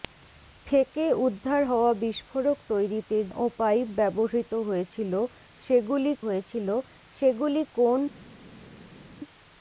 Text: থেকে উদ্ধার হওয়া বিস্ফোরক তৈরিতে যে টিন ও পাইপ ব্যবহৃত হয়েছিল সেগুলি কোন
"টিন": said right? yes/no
no